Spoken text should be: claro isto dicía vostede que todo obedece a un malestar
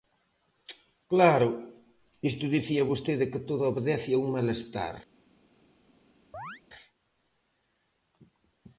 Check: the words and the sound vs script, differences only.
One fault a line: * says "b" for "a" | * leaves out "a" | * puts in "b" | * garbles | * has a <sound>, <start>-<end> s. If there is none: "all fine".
* has a chirp, 6.3-6.6 s